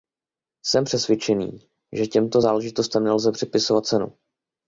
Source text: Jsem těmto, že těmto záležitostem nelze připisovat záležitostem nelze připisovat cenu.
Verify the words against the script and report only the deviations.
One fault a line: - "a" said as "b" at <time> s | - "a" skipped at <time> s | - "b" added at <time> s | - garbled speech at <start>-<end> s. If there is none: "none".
- "těmto" said as "přesvědčený" at 0.8 s
- "záležitostem nelze připisovat" skipped at 3.8 s